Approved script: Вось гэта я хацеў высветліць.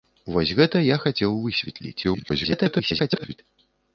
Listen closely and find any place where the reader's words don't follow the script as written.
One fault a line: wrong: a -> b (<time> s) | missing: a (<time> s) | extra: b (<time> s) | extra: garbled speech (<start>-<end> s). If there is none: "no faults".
extra: garbled speech (2.0-3.4 s)